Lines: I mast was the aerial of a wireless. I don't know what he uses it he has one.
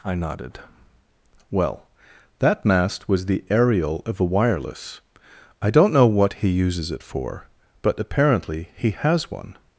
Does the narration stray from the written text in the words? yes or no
yes